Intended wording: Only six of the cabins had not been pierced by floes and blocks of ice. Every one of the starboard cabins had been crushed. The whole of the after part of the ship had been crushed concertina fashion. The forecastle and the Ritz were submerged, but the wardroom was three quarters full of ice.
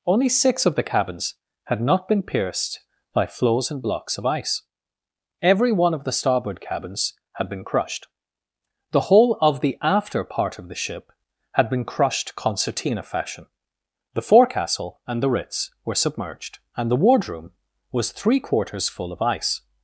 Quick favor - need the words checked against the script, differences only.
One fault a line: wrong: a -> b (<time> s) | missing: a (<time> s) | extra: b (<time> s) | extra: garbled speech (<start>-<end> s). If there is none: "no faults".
wrong: but -> and (16.8 s)